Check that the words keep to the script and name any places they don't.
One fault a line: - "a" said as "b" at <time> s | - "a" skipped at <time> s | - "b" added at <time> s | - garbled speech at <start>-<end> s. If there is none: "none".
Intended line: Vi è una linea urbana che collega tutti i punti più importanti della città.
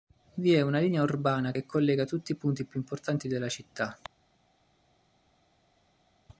none